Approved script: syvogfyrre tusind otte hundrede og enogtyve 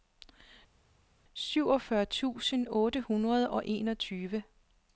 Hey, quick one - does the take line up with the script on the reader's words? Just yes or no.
yes